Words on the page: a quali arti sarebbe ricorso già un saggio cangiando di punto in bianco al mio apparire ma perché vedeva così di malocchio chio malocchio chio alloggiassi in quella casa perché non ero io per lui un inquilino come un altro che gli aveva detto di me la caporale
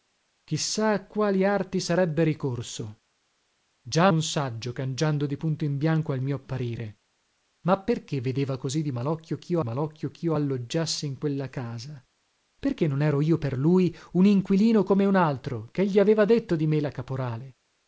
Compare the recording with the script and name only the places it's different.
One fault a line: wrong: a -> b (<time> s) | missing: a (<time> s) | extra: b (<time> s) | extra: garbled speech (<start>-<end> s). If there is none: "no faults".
no faults